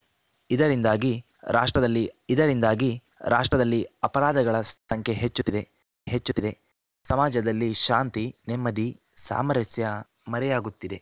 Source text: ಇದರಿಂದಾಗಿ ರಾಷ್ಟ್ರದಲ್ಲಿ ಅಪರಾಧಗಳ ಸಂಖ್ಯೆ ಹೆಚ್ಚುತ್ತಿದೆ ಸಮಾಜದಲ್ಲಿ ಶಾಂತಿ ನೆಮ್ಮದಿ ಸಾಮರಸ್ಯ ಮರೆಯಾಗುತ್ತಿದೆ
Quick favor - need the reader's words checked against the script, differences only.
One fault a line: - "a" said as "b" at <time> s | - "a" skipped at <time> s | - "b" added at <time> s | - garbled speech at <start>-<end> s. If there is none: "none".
- "ಇದರಿಂದಾಗಿ ರಾಷ್ಟ್ರದಲ್ಲಿ" added at 2.3 s
- "ಹೆಚ್ಚುತ್ತಿದೆ" added at 6.1 s